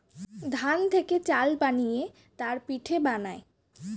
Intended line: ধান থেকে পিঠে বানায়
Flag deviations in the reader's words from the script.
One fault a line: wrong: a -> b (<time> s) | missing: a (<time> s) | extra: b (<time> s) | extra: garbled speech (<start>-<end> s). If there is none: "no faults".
extra: চাল বানিয়ে তার (1.2 s)